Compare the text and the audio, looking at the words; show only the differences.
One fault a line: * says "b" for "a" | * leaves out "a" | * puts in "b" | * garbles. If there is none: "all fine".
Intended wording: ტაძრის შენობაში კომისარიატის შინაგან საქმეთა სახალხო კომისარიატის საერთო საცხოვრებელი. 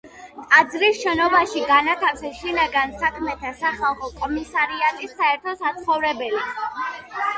* says "განათავსეს" for "კომისარიატის"